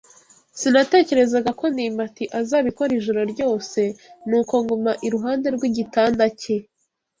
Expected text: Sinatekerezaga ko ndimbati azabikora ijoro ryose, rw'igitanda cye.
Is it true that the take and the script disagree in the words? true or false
true